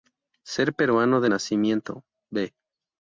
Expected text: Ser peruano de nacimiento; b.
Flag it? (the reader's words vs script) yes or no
no